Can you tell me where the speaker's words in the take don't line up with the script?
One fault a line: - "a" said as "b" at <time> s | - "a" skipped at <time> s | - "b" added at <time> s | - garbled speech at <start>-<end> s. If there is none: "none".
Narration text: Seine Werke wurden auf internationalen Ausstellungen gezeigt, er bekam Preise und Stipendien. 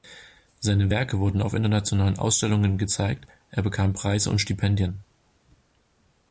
none